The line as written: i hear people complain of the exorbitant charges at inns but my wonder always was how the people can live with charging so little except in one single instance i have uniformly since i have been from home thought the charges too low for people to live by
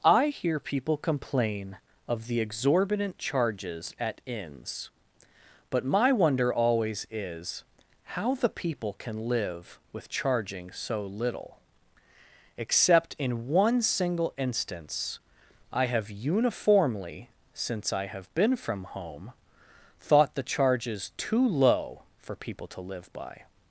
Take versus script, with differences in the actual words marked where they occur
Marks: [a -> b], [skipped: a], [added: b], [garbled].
i hear people complain of the exorbitant charges at inns but my wonder always [was -> is] how the people can live with charging so little except in one single instance i have uniformly since i have been from home thought the charges too low for people to live by